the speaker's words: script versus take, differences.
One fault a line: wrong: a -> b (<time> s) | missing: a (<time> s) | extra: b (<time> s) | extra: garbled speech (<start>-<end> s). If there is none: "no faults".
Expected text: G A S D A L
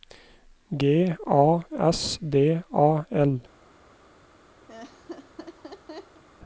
no faults